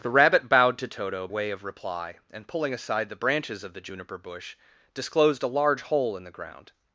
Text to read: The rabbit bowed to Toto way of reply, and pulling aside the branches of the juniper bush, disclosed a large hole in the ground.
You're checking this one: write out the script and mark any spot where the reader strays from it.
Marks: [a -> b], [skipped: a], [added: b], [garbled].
The rabbit bowed to Toto way of reply, and pulling aside the branches of the juniper bush, disclosed a large hole in the ground.